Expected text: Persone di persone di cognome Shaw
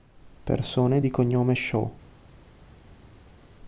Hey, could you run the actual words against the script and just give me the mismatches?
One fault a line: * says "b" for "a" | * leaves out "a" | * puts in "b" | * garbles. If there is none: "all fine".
* leaves out "persone di"